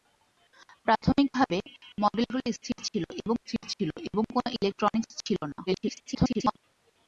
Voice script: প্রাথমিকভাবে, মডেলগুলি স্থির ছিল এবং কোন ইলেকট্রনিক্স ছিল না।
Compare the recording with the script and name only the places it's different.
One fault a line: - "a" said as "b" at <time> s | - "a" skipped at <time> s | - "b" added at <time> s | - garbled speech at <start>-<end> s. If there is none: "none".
- "স্থির ছিল এবং" added at 3.4 s
- garbled speech at 5.7-6.6 s